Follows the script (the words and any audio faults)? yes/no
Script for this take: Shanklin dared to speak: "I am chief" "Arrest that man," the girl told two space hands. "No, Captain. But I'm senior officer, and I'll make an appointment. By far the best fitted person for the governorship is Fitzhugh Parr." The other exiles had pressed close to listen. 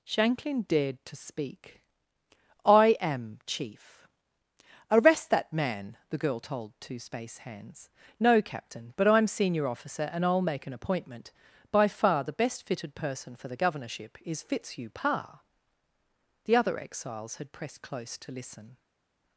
yes